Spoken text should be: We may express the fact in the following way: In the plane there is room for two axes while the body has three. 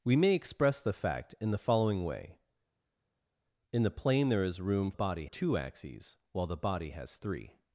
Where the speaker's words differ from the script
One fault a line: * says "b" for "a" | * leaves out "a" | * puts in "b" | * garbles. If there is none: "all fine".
* says "body" for "for"